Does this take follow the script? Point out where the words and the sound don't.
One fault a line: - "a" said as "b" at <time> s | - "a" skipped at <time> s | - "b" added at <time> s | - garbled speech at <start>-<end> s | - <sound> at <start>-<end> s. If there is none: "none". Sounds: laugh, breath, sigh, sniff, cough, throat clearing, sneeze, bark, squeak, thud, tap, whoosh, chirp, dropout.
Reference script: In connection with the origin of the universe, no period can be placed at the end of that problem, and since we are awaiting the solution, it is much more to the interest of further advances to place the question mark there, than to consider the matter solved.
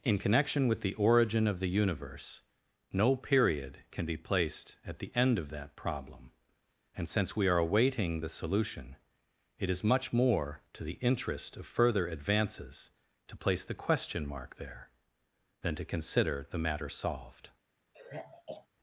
- sigh at 17.9-18.7 s